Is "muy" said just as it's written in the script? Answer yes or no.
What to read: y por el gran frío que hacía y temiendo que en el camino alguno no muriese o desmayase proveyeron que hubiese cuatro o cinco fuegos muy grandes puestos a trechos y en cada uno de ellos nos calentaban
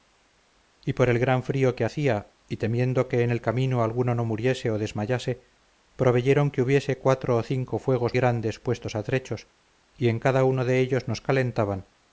no